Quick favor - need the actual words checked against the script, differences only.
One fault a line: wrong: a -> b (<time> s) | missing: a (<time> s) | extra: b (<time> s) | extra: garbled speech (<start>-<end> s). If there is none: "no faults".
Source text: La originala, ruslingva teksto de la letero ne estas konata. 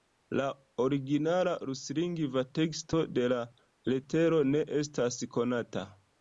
no faults